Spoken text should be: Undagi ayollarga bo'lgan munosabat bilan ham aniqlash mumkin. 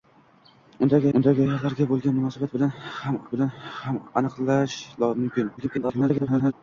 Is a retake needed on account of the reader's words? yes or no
yes